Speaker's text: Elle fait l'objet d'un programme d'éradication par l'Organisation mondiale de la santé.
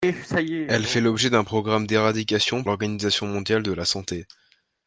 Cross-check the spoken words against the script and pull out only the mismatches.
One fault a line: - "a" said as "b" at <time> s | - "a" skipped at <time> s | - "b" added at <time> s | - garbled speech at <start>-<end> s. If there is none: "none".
- "par" skipped at 2.6 s